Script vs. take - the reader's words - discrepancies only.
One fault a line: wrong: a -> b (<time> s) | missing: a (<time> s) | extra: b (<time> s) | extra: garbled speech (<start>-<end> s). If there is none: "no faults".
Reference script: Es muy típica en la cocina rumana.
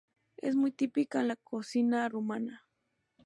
no faults